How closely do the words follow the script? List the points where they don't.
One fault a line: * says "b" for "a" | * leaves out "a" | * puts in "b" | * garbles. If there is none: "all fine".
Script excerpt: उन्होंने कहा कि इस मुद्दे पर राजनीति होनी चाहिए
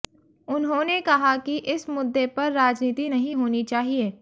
* puts in "नहीं"